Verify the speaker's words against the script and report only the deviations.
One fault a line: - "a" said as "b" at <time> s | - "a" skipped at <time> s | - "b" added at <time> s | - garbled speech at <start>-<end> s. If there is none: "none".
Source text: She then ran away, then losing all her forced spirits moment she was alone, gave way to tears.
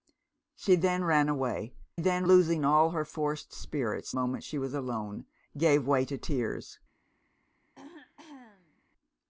none